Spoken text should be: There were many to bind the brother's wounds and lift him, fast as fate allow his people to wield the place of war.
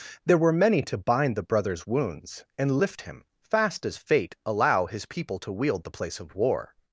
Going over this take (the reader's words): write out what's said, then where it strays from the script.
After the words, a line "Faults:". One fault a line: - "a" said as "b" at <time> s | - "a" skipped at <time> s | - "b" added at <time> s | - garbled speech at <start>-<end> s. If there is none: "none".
There were many to bind the brother's wounds and lift him, fast as fate allow his people to wield the place of war.
Faults:
none